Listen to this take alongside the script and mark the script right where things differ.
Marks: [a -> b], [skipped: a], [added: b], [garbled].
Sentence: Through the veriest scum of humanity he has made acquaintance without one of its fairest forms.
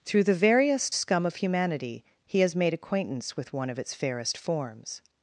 Through the veriest scum of humanity he has made acquaintance [without -> with] one of its fairest forms.